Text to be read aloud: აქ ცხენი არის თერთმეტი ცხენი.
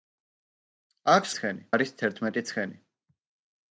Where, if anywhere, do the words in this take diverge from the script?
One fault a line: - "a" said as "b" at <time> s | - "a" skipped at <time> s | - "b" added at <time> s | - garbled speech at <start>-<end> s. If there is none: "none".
none